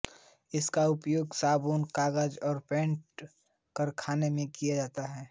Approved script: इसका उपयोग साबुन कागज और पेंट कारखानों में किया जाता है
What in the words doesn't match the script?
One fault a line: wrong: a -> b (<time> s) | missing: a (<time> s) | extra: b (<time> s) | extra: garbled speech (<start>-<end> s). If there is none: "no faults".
no faults